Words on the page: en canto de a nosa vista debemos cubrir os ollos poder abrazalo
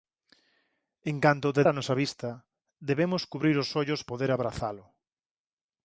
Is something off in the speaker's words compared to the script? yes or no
no